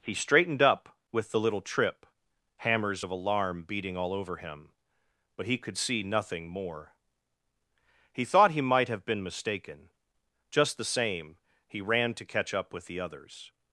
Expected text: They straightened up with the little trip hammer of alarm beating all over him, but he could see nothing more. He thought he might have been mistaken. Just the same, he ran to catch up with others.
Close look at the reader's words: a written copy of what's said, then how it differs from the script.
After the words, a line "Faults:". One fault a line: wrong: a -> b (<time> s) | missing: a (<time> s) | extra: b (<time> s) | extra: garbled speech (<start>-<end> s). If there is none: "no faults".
He straightened up with the little trip hammers of alarm beating all over him, but he could see nothing more. He thought he might have been mistaken. Just the same, he ran to catch up with the others.
Faults:
wrong: They -> He (0.0 s)
wrong: hammer -> hammers (2.6 s)
extra: the (12.9 s)